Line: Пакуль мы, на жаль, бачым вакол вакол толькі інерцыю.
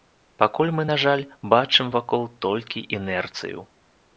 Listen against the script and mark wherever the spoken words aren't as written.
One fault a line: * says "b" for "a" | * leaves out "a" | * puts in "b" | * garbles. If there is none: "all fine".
* leaves out "вакол"